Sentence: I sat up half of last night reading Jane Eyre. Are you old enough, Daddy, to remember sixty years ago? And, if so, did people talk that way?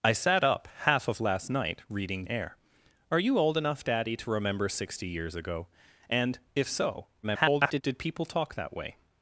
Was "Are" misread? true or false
false